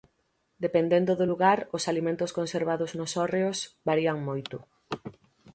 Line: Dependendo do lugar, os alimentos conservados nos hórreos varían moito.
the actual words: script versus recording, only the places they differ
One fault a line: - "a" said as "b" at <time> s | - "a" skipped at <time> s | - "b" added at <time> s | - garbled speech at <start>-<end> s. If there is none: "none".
none